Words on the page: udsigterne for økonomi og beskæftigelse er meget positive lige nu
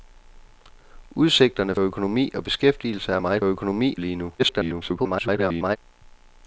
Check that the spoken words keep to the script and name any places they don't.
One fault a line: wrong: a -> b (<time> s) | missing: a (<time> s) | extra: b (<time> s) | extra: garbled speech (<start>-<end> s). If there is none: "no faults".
missing: for (1.8 s)
wrong: positive -> økonomi (3.4 s)
extra: garbled speech (4.4-5.8 s)